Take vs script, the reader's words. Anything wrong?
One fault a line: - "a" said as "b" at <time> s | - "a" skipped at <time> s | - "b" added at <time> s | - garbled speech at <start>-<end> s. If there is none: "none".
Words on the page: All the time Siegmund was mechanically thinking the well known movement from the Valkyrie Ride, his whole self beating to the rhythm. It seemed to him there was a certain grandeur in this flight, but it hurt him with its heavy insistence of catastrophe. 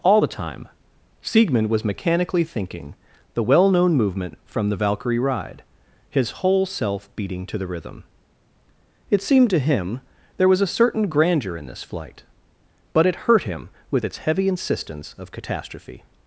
none